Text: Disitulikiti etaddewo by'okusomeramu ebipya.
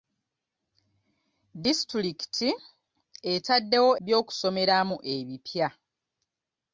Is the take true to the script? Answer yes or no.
yes